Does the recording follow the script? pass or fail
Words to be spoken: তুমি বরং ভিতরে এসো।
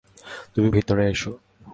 fail